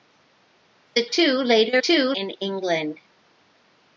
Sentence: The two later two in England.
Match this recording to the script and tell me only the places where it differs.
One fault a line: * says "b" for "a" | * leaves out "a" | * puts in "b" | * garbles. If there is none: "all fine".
all fine